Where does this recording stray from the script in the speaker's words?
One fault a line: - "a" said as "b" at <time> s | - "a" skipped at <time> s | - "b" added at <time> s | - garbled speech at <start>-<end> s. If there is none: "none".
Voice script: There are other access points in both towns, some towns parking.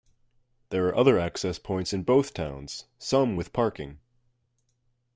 - "towns" said as "with" at 3.4 s